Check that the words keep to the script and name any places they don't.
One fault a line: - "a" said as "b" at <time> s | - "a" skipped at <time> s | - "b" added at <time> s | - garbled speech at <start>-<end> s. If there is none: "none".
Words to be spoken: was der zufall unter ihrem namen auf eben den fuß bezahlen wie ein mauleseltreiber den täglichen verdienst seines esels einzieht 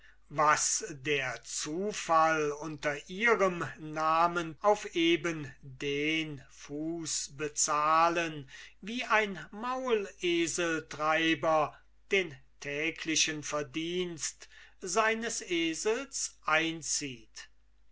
none